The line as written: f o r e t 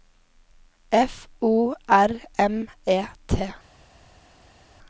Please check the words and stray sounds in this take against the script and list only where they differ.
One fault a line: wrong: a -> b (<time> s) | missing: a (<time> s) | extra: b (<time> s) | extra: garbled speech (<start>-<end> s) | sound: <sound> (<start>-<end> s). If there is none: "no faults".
extra: m (2.4 s)